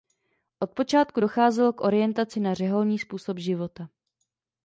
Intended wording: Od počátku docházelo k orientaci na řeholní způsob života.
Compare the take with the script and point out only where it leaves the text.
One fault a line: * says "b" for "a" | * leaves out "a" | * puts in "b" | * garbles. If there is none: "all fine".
all fine